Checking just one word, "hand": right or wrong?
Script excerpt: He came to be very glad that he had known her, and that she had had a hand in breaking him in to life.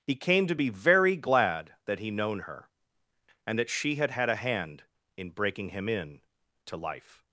right